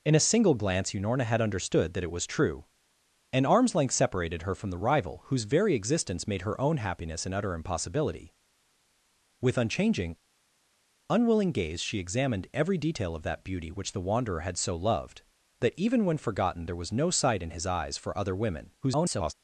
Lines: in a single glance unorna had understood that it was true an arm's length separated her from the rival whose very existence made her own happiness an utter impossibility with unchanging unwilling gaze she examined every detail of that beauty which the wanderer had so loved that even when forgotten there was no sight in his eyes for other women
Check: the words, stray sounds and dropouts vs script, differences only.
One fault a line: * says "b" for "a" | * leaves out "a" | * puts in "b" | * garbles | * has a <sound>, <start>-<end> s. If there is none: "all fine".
* garbles